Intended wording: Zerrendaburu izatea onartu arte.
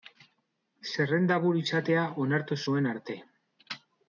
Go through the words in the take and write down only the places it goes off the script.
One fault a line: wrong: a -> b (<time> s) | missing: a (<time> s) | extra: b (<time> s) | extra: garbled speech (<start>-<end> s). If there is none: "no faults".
extra: zuen (2.6 s)